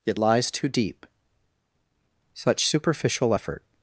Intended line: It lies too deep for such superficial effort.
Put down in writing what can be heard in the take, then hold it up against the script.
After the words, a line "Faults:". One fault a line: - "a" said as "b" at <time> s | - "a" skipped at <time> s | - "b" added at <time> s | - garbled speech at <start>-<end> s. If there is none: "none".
It lies too deep such superficial effort.
Faults:
- "for" skipped at 1.0 s